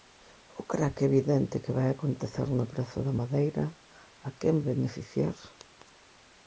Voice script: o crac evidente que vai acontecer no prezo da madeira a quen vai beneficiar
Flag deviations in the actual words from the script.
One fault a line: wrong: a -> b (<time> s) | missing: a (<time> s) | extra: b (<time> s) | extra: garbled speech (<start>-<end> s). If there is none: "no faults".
missing: vai (4.6 s)